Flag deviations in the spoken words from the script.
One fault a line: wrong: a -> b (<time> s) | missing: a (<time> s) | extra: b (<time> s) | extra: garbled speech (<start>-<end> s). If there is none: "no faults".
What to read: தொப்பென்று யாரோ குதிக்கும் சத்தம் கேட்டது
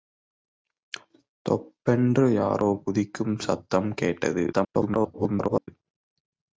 extra: garbled speech (4.5-5.7 s)